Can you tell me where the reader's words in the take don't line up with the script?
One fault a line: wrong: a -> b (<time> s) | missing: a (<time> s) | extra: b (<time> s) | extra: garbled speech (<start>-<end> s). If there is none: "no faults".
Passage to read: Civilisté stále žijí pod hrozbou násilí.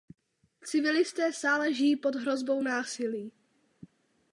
no faults